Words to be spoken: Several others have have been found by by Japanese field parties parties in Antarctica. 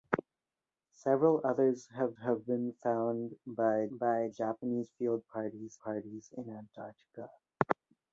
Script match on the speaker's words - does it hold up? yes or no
yes